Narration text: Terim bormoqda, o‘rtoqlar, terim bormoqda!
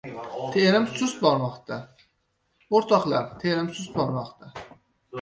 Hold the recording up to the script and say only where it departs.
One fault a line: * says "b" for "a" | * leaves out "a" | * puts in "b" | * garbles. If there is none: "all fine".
* puts in "sust"
* puts in "sust"